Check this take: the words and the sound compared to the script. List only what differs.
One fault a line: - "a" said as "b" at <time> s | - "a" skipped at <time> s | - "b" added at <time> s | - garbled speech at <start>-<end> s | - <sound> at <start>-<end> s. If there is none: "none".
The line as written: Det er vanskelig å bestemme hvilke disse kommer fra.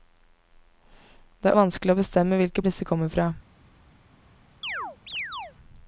- chirp at 4.6-5.5 s